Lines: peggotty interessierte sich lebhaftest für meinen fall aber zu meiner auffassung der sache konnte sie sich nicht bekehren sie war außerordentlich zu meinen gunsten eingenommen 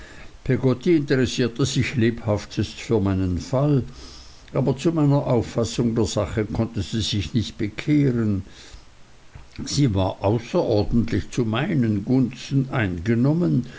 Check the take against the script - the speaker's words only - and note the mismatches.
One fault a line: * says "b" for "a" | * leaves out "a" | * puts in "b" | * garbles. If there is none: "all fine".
all fine